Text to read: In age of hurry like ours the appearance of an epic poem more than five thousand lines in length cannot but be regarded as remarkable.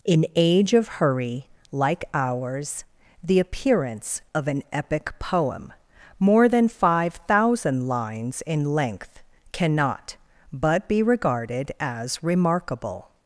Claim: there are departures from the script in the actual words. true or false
false